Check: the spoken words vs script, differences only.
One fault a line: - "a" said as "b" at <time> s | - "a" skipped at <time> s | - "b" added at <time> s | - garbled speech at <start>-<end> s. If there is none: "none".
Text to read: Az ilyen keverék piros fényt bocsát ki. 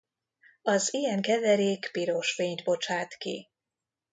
none